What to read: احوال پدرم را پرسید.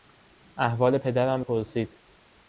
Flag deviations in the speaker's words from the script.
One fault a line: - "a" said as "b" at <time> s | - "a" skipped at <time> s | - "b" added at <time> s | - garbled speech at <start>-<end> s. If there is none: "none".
- "را" skipped at 1.4 s